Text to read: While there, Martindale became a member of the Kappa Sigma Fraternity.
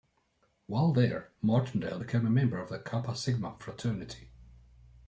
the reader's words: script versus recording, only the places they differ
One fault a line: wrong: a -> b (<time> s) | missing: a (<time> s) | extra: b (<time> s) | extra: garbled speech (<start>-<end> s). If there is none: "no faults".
no faults